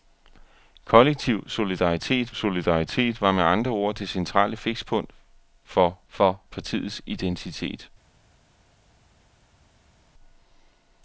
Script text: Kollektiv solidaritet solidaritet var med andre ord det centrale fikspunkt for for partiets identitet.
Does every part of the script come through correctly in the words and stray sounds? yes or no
yes